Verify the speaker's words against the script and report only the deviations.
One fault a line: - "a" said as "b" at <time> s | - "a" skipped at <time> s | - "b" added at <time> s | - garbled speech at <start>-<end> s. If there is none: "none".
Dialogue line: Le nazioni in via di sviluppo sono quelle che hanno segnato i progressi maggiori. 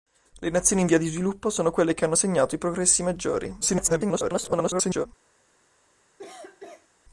- garbled speech at 3.6-5.1 s